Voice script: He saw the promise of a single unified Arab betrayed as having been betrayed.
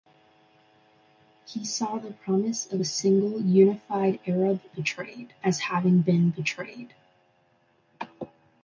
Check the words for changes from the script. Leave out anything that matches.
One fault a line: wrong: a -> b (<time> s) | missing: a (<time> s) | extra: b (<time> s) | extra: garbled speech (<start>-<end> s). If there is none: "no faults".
no faults